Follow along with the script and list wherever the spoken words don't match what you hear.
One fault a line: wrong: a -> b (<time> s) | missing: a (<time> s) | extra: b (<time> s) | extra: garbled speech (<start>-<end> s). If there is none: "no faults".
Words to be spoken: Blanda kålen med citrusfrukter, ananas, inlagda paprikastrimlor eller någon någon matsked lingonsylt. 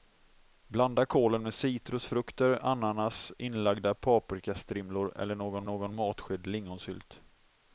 no faults